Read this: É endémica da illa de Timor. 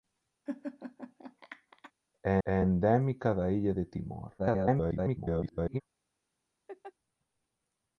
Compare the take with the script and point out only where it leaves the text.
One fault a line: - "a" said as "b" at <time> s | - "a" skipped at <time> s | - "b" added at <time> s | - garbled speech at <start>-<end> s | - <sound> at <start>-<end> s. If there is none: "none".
- laugh at 0.5-1.9 s
- "é" added at 2.4 s
- garbled speech at 4.4-5.8 s
- laugh at 6.7-6.9 s